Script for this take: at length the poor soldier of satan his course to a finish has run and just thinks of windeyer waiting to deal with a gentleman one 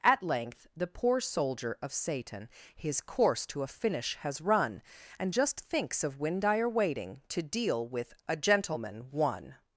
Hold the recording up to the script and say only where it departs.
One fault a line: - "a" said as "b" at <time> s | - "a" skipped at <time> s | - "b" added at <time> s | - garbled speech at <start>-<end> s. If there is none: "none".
none